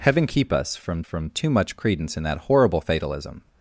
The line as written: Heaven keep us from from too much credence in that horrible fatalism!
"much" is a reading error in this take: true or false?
false